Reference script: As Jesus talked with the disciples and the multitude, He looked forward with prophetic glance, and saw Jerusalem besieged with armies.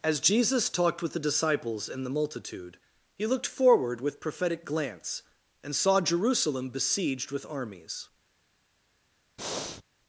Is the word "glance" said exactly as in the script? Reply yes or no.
yes